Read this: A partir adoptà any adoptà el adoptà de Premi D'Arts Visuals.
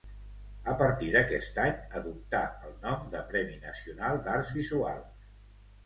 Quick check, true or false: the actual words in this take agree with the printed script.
false